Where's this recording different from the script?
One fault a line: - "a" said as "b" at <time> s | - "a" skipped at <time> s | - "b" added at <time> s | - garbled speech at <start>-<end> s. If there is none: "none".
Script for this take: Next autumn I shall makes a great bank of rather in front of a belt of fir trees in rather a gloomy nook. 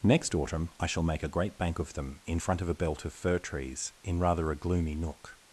- "makes" said as "make" at 1.0 s
- "rather" said as "them" at 1.9 s